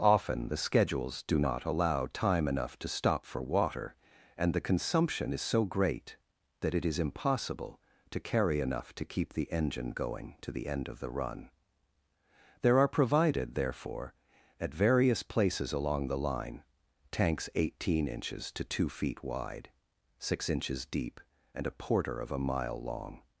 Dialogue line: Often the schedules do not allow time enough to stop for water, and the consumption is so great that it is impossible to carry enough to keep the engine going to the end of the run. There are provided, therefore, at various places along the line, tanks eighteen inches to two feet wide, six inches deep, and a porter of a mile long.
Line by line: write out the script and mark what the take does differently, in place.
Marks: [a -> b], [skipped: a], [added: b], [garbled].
Often the schedules do not allow time enough to stop for water, and the consumption is so great that it is impossible to carry enough to keep the engine going to the end of the run. There are provided, therefore, at various places along the line, tanks eighteen inches to two feet wide, six inches deep, and a porter of a mile long.